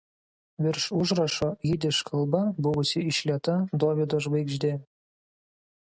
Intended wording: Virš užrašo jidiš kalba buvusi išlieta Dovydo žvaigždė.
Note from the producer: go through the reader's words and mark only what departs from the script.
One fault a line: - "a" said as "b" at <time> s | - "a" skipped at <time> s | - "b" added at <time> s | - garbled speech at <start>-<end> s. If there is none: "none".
none